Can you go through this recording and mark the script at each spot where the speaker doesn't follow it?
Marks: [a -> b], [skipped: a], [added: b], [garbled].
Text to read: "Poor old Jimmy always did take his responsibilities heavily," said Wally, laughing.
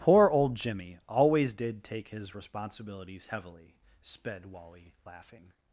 "Poor old Jimmy always did take his responsibilities heavily," [said -> sped] Wally, laughing.